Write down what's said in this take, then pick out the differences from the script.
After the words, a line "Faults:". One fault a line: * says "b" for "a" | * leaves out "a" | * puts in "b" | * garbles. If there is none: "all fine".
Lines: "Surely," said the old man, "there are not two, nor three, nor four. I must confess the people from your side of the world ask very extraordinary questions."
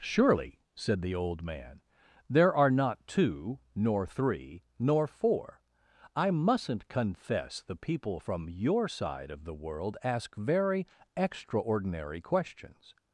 "Surely," said the old man, "there are not two, nor three, nor four. I mustn't confess the people from your side of the world ask very extraordinary questions."
Faults:
* says "mustn't" for "must"